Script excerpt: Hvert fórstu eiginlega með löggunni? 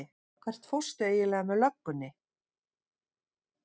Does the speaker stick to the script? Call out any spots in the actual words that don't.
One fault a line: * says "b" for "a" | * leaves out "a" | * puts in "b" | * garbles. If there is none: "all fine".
all fine